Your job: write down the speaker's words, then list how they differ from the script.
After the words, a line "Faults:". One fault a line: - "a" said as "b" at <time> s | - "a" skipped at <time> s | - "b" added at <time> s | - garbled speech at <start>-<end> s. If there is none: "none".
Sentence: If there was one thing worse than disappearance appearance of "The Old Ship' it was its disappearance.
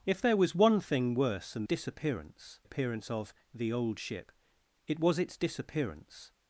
If there was one thing worse than disappearance appearance of "The Old Ship' it was its disappearance.
Faults:
none